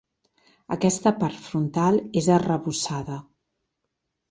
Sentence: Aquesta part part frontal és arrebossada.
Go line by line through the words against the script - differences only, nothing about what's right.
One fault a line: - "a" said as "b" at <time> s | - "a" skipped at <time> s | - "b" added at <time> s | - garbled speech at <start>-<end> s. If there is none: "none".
- "part" skipped at 1.4 s